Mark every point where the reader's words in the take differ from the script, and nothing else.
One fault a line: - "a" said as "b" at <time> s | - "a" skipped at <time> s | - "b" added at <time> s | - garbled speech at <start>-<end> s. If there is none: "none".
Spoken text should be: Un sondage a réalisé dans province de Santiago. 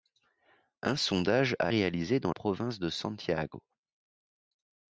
none